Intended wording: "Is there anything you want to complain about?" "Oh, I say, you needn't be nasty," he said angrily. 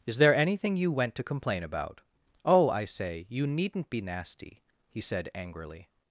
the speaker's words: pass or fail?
fail